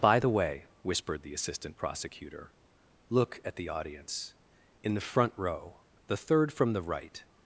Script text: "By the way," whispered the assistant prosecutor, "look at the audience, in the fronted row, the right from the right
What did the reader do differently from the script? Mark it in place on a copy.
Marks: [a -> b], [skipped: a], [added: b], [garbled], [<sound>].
"By the way," whispered the assistant prosecutor, "look at the audience, in the [fronted -> front] row, the [right -> third] from the right